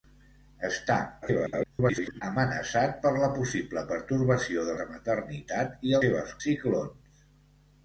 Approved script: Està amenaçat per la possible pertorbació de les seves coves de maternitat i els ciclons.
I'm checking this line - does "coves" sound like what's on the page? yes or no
no